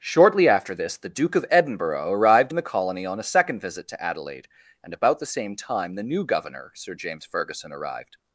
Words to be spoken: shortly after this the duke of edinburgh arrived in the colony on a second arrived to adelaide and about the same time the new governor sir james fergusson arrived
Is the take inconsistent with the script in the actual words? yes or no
yes